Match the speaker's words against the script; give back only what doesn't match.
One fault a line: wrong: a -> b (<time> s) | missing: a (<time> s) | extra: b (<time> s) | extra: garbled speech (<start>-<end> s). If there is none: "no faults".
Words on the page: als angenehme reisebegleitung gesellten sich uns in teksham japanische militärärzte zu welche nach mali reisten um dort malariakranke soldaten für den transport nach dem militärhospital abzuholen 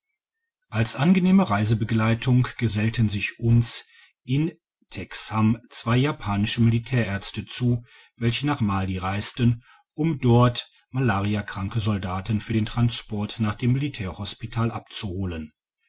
extra: zwei (5.7 s)